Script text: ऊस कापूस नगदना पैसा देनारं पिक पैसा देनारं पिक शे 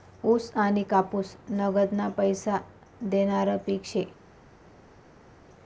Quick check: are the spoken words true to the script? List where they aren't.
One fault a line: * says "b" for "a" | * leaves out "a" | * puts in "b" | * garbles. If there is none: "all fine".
* puts in "आनी"
* leaves out "पैसा देनारं पिक"